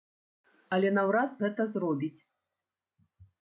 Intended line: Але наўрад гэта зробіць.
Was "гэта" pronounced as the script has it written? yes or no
yes